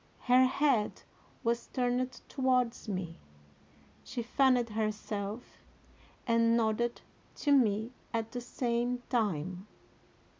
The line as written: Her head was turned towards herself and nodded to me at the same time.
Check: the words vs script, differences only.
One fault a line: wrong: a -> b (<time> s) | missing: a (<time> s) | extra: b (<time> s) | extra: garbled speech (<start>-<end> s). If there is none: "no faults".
extra: me She fanned (2.9 s)